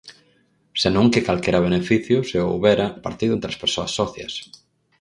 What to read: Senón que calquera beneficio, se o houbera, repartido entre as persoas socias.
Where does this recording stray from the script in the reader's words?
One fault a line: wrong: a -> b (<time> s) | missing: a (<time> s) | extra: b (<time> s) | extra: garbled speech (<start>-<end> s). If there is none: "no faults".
no faults